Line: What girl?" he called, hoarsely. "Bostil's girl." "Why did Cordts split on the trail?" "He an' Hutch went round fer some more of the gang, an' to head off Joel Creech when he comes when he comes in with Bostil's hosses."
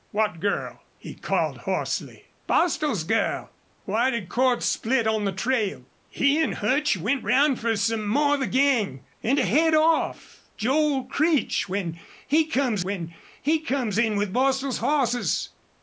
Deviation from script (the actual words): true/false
false